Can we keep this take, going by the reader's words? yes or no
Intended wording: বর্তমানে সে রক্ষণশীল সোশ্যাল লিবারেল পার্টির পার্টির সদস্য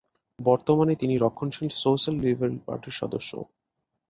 no